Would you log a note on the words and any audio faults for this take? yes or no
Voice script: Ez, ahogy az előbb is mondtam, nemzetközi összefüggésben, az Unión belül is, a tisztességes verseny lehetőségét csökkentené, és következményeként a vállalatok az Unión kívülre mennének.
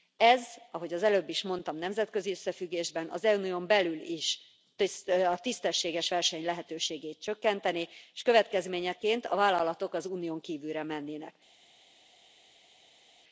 no